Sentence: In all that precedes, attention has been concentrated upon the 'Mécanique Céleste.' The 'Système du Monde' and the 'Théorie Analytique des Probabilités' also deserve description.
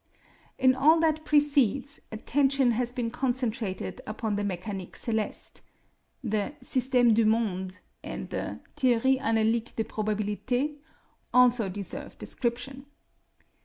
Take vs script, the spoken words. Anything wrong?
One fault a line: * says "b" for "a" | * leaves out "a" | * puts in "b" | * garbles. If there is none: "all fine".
all fine